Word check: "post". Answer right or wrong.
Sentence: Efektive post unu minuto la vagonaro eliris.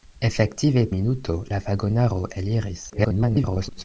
wrong